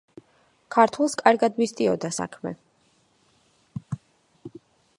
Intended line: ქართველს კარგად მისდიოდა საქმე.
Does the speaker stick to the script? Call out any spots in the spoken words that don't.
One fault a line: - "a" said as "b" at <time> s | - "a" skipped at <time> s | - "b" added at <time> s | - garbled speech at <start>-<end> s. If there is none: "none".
none